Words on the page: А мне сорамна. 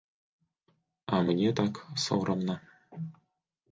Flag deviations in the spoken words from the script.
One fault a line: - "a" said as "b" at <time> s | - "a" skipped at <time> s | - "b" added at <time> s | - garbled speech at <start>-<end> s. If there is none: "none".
- "так" added at 1.6 s